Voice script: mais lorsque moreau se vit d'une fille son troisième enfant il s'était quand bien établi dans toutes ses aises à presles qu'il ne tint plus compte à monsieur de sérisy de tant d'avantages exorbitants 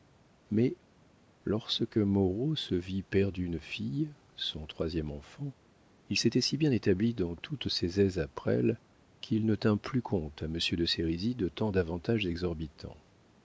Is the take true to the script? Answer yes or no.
no